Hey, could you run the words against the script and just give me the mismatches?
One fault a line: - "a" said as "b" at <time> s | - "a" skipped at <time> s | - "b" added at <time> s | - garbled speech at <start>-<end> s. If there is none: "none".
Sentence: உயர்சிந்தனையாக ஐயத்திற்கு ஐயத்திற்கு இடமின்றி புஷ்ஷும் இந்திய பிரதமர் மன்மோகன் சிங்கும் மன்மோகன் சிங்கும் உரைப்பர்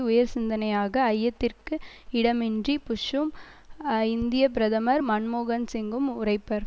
- "ஐயத்திற்கு" skipped at 1.8 s
- "மன்மோகன் சிங்கும்" skipped at 6.1 s